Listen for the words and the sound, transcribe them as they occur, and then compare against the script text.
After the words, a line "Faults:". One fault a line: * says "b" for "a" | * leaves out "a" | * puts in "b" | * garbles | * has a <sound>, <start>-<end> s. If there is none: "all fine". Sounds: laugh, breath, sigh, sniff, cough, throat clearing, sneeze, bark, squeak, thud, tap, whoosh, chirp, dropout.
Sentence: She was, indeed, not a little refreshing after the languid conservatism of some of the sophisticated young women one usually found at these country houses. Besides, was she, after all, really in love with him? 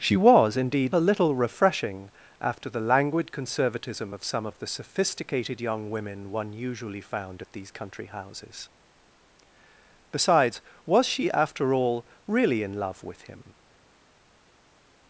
She was, indeed, a little refreshing after the languid conservatism of some of the sophisticated young women one usually found at these country houses. Besides, was she, after all, really in love with him?
Faults:
* leaves out "not"